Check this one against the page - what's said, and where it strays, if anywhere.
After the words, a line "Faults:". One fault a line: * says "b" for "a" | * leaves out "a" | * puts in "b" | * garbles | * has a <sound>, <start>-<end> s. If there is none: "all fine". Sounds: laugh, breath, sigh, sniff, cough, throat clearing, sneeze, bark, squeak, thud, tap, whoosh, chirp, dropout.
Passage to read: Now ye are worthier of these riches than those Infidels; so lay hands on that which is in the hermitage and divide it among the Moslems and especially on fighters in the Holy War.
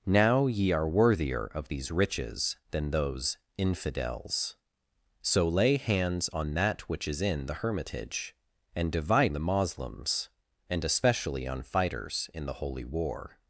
Now ye are worthier of these riches than those Infidels; so lay hands on that which is in the hermitage and divide the Moslems and especially on fighters in the Holy War.
Faults:
* leaves out "it among"